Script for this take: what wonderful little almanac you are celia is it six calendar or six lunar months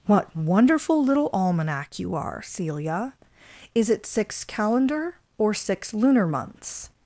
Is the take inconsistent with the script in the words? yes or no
no